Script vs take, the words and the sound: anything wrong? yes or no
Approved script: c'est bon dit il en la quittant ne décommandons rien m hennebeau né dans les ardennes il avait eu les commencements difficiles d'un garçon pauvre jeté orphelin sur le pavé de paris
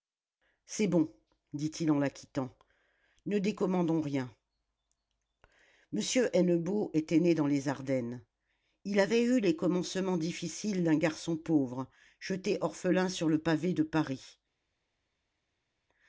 yes